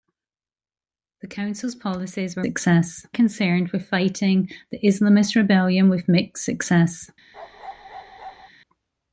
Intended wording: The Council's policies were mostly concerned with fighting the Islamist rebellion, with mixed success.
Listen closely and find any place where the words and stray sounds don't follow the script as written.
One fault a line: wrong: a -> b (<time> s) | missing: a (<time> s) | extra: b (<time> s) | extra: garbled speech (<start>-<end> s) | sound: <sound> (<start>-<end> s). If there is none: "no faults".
wrong: mostly -> success (2.4 s)
sound: bark (7.3-8.5 s)